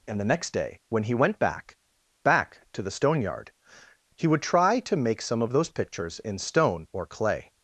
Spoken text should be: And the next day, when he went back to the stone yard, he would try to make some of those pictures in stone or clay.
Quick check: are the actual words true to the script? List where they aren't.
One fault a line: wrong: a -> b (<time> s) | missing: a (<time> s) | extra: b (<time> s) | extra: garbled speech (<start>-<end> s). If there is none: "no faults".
extra: back (2.2 s)